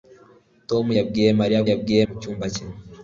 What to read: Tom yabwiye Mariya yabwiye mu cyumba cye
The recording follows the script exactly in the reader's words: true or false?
true